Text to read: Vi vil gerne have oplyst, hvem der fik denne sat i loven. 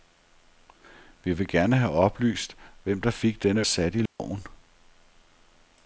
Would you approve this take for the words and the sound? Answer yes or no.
no